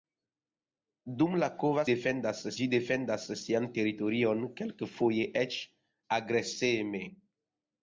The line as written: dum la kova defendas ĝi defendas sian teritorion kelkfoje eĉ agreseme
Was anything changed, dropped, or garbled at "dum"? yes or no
no